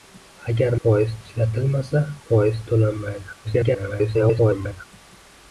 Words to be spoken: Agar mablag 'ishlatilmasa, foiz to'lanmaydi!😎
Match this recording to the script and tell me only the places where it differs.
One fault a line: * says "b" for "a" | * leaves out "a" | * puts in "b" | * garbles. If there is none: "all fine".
* says "foiz" for "mablag"
* garbles